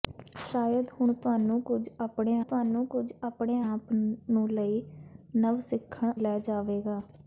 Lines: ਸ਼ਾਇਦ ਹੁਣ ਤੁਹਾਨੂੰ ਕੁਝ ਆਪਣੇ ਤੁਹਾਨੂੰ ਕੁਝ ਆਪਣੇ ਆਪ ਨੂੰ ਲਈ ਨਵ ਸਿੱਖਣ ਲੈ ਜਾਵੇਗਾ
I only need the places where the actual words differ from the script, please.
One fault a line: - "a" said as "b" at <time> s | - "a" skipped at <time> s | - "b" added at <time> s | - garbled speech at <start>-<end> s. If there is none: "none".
none